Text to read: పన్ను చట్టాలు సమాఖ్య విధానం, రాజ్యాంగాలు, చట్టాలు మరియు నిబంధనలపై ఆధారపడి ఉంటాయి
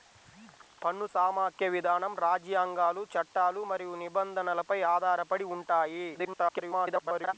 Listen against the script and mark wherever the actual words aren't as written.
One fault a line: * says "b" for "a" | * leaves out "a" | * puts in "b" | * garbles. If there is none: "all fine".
* leaves out "చట్టాలు"
* garbles